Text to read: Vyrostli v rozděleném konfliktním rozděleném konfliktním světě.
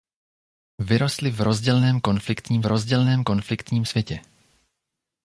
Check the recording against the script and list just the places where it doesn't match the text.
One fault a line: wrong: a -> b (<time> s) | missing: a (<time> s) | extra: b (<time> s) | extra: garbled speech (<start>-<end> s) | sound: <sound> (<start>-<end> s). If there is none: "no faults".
no faults